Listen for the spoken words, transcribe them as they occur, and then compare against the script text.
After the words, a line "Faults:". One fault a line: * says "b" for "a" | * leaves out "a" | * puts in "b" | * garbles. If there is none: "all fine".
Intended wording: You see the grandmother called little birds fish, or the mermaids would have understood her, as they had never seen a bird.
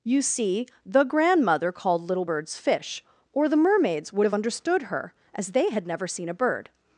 You see the grandmother called little birds fish, or the mermaids would have understood her, as they had never seen a bird.
Faults:
all fine